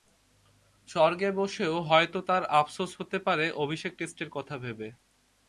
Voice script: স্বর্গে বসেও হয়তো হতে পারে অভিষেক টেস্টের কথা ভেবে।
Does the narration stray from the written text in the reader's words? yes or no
yes